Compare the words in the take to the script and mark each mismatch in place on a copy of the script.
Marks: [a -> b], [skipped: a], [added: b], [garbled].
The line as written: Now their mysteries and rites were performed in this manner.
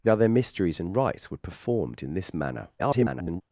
Now their mysteries and rites were performed in this manner. [garbled]